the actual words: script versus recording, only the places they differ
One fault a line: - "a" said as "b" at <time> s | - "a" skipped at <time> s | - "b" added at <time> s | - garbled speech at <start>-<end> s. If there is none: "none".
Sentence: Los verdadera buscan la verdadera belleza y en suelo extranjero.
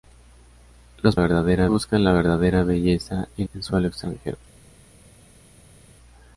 none